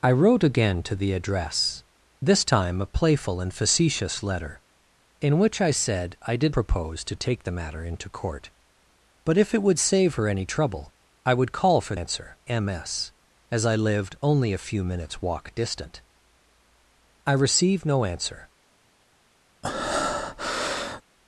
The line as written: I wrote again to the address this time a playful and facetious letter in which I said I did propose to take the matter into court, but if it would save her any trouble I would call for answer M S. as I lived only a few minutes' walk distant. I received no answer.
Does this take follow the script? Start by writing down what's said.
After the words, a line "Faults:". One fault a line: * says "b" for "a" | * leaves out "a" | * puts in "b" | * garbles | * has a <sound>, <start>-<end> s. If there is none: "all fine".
I wrote again to the address this time a playful and facetious letter in which I said I did propose to take the matter into court, but if it would save her any trouble I would call for answer M S. as I lived only a few minutes' walk distant. I received no answer.
Faults:
* has a breath, 19.6-21.0 s